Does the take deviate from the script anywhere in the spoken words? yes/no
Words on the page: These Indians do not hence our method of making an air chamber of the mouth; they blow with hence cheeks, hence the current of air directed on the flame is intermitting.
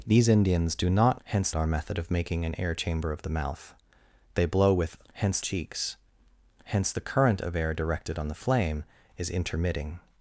no